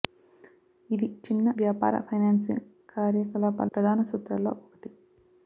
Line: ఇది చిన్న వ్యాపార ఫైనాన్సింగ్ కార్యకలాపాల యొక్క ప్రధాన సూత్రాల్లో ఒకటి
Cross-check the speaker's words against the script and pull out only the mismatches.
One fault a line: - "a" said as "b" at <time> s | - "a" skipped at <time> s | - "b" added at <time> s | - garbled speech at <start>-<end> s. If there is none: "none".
- "యొక్క" skipped at 3.7 s